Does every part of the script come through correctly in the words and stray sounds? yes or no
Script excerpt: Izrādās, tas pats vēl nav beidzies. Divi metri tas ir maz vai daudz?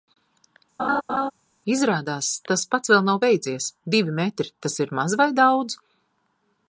no